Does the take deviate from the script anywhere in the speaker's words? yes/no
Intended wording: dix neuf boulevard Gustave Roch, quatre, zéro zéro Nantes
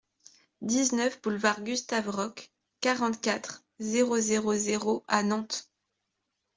yes